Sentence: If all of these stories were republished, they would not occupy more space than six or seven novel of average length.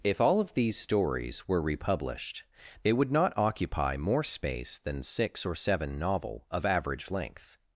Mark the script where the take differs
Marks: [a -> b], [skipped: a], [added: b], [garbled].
If all of these stories were republished, they would not occupy more space than six or seven novel of average length.